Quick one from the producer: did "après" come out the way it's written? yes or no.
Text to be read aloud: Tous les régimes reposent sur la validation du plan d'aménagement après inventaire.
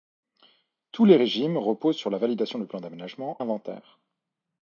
no